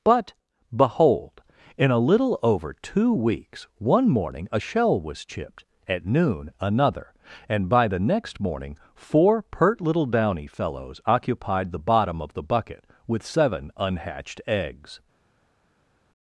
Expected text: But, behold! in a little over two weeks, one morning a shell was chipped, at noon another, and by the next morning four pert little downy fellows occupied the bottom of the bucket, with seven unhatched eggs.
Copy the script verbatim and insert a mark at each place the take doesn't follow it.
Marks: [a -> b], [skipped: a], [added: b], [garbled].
But, behold! in a little over two weeks, one morning a shell was chipped, at noon another, and by the next morning four pert little downy fellows occupied the bottom of the bucket, with seven unhatched eggs.